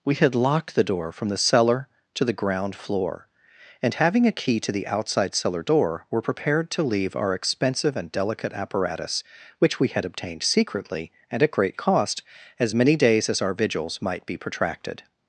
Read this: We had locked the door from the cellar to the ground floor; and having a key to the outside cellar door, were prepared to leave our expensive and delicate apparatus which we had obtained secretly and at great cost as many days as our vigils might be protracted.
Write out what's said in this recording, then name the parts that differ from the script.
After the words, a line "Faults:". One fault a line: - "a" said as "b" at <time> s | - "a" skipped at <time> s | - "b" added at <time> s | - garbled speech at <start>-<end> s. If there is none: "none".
We had locked the door from the cellar to the ground floor; and having a key to the outside cellar door, were prepared to leave our expensive and delicate apparatus which we had obtained secretly and at great cost as many days as our vigils might be protracted.
Faults:
none